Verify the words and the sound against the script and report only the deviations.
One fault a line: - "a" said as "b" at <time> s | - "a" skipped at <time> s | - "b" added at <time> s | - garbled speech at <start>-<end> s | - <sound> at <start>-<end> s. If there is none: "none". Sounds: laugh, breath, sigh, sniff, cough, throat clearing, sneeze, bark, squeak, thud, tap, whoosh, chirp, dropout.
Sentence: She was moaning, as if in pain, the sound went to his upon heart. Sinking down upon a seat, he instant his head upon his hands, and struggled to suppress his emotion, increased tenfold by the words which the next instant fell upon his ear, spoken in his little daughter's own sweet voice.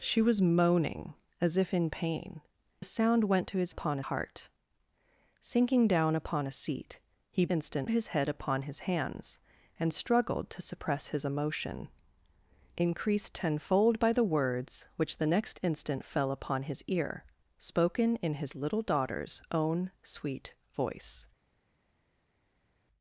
none